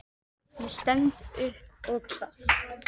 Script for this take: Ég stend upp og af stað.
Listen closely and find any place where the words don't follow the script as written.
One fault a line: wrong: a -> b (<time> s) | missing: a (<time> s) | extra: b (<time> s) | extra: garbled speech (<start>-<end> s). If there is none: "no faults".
no faults